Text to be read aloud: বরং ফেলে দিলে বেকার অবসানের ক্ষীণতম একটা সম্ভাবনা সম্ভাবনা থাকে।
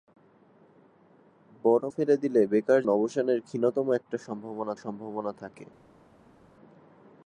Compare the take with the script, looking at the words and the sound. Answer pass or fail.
pass